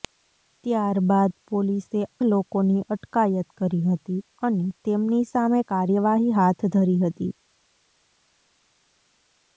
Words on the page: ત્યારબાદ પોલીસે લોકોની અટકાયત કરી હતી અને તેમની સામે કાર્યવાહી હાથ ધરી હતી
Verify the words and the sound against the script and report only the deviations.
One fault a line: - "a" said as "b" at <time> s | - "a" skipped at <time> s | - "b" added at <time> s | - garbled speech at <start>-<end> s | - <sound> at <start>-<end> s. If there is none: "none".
none